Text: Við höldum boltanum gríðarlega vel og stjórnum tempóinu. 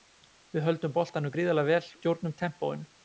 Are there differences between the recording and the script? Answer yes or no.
yes